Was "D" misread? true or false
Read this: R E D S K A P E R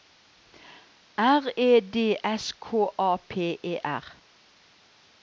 false